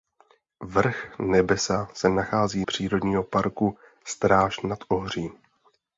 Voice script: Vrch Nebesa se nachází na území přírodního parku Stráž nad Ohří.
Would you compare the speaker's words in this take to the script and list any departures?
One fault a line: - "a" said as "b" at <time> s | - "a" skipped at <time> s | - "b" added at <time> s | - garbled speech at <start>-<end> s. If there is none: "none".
- "na území" skipped at 2.6 s